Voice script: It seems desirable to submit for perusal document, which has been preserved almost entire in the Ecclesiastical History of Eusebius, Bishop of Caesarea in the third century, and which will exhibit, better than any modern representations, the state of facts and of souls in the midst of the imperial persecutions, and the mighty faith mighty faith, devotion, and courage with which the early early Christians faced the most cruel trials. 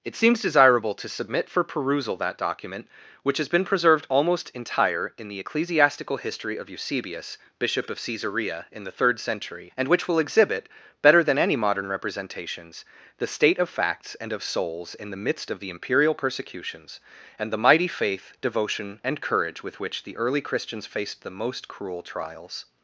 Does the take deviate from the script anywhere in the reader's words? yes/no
yes